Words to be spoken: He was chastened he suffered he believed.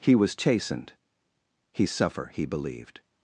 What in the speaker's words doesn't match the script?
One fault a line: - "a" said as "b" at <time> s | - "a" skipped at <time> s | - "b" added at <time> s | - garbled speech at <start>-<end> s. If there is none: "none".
- "suffered" said as "suffer" at 1.9 s